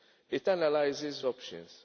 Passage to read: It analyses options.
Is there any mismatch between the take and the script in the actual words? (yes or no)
no